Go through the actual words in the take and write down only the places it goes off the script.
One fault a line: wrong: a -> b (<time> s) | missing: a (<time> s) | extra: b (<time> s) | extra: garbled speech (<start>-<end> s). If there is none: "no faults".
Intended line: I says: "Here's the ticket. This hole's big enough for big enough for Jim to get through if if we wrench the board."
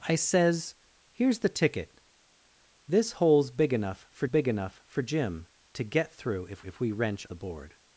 no faults